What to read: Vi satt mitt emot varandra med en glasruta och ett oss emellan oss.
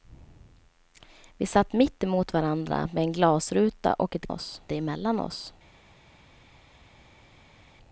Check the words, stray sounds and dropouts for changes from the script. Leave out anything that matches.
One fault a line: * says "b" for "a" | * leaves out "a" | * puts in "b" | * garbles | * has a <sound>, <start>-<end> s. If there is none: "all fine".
all fine